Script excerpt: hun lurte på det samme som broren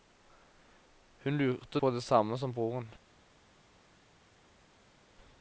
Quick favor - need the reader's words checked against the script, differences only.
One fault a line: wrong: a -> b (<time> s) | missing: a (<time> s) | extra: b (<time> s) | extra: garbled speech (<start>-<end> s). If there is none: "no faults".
no faults